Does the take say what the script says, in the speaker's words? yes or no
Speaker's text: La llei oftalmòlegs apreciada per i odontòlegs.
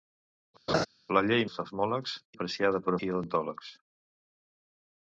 yes